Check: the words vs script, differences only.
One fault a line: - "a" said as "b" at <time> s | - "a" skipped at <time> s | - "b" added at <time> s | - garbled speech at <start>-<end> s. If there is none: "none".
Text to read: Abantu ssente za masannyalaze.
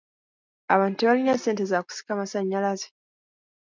- "tebalina" added at 1.0 s
- "kusika" added at 1.9 s